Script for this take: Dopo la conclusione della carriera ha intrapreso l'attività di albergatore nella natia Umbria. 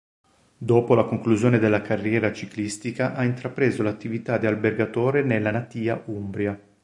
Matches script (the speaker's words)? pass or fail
fail